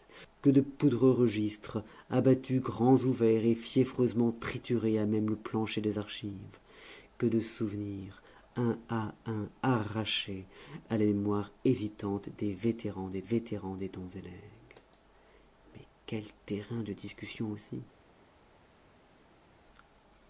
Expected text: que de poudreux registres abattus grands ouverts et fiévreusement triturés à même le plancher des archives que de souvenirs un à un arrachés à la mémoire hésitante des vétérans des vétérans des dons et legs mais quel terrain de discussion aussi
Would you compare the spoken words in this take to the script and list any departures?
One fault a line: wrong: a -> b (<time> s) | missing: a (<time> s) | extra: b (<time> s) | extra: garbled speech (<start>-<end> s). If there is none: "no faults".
no faults